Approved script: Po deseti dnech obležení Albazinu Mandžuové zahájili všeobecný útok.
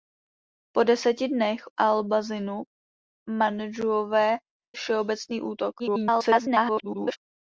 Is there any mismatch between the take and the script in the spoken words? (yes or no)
yes